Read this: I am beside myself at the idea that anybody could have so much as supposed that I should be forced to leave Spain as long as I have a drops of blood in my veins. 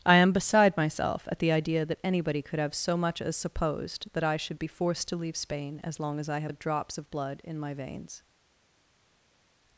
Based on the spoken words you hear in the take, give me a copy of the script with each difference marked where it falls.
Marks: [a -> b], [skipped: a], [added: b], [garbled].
I am beside myself at the idea that anybody could have so much as supposed that I should be forced to leave Spain as long as I have a drops of blood in my veins.